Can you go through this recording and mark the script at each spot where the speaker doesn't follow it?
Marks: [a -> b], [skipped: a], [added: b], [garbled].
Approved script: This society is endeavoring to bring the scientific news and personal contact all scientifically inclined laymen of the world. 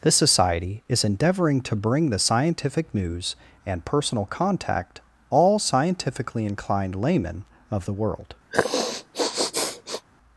This society is endeavoring to bring the scientific news and personal contact all scientifically inclined laymen of the world.